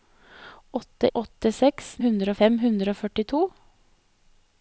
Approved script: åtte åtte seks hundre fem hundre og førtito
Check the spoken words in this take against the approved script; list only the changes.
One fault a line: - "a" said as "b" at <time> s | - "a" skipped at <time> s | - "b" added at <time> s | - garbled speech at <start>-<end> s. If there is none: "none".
none